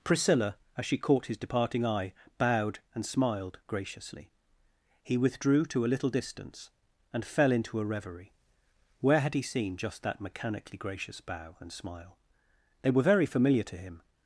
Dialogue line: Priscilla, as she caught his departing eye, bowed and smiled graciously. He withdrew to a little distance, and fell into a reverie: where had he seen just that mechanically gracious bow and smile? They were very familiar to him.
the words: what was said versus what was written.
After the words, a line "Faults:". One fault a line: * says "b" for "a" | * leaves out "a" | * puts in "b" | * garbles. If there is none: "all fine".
Priscilla, as she caught his departing eye, bowed and smiled graciously. He withdrew to a little distance, and fell into a reverie: where had he seen just that mechanically gracious bow and smile? They were very familiar to him.
Faults:
all fine